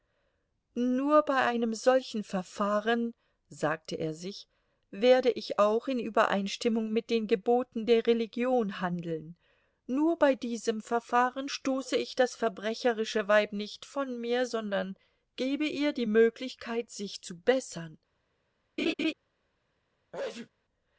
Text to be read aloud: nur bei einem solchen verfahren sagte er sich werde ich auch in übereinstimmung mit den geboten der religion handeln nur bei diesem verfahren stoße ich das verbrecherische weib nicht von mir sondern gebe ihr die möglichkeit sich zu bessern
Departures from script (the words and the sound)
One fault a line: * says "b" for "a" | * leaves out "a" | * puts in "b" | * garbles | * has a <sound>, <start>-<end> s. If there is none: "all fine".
* has a laugh, 18.8-19.1 s
* has a sneeze, 20.1-20.5 s